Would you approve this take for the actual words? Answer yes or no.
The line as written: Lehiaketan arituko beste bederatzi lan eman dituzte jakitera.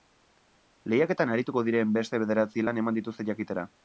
no